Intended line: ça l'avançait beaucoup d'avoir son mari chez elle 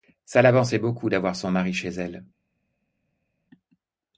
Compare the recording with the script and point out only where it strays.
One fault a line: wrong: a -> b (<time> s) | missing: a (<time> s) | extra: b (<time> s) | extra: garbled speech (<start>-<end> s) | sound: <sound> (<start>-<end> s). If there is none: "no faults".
no faults